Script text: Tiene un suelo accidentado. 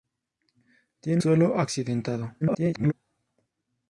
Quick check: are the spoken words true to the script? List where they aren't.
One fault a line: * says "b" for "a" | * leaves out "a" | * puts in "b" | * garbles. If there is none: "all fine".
* leaves out "un"
* garbles